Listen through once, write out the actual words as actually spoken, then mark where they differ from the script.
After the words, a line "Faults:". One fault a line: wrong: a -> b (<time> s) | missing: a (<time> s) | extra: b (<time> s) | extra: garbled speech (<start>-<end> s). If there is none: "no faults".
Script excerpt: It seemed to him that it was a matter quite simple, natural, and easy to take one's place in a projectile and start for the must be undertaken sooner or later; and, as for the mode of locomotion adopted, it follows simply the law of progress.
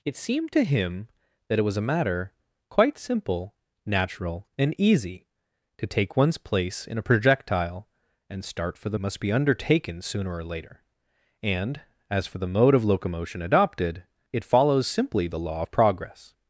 It seemed to him that it was a matter quite simple, natural, and easy to take one's place in a projectile and start for the must be undertaken sooner or later; and, as for the mode of locomotion adopted, it follows simply the law of progress.
Faults:
no faults